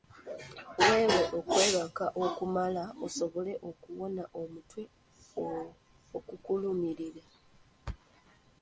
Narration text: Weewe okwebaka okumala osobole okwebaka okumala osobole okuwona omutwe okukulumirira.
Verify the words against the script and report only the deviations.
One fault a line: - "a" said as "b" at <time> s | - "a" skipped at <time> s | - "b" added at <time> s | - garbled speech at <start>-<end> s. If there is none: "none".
- "okwebaka okumala osobole" skipped at 3.5 s